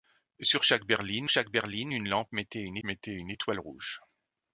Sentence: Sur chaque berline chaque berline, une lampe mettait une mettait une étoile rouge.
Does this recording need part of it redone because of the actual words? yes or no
no